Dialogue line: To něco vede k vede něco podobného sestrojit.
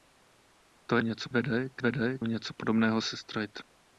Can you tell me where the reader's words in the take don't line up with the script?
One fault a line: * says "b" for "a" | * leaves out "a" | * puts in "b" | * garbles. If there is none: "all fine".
all fine